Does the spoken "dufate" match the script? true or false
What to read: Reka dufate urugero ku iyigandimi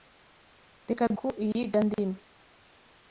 false